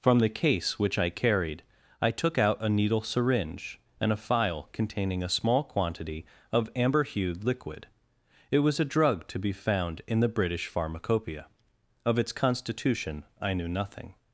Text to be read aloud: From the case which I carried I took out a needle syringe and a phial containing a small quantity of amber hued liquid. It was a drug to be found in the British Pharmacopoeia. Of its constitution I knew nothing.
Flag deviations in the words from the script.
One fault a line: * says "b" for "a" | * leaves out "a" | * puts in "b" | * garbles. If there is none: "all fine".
all fine